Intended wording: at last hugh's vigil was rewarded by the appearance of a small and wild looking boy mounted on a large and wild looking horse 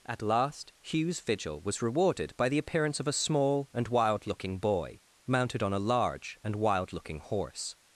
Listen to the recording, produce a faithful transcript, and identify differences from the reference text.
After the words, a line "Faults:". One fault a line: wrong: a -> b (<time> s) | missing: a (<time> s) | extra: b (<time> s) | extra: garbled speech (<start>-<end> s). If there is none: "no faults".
at last hugh's vigil was rewarded by the appearance of a small and wild looking boy mounted on a large and wild looking horse
Faults:
no faults